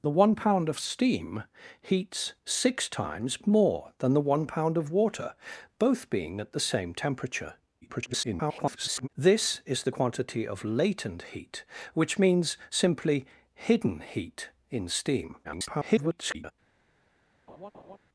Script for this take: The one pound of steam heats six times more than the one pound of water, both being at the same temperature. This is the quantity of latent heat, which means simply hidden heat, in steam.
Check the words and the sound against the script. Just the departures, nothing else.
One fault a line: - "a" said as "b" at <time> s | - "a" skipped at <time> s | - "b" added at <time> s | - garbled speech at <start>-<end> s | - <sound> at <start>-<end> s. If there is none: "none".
- garbled speech at 7.8-9.1 s
- garbled speech at 15.4-16.5 s
- laugh at 17.5-18.0 s